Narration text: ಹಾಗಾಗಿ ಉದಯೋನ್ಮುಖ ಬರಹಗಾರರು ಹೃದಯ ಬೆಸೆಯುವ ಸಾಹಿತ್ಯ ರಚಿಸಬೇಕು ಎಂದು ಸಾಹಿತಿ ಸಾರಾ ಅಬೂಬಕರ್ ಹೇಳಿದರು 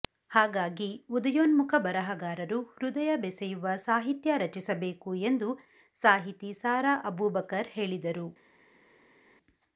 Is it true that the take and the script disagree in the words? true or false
false